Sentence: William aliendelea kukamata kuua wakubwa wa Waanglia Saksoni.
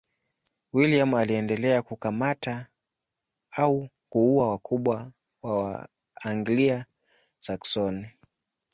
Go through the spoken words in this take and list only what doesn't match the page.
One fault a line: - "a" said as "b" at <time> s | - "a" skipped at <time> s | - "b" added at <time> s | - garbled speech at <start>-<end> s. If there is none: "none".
- "au" added at 3.5 s